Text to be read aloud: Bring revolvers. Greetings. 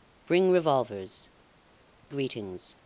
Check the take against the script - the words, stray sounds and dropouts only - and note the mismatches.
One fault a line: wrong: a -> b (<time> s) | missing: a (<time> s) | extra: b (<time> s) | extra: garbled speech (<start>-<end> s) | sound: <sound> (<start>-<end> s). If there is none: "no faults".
no faults